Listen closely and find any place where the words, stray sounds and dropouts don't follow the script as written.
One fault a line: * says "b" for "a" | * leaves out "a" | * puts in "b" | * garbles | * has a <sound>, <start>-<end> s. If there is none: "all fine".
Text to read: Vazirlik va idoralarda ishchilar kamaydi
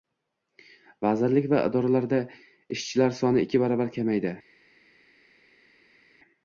* puts in "soni ikki baravar"